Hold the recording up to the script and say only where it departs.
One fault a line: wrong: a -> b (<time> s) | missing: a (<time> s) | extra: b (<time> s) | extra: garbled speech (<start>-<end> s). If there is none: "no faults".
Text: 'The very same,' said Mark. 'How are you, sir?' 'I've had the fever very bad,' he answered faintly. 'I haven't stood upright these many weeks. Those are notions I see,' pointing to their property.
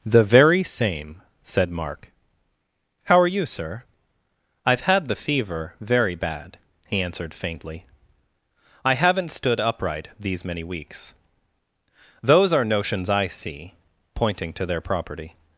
no faults